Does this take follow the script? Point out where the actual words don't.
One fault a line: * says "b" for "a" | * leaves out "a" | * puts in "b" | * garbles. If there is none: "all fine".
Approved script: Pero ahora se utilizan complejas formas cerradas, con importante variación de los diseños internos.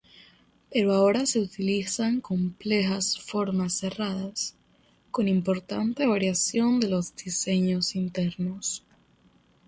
all fine